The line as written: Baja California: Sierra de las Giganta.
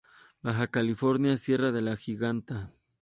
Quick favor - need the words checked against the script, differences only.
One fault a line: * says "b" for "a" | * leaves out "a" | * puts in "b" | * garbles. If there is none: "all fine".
* says "la" for "las"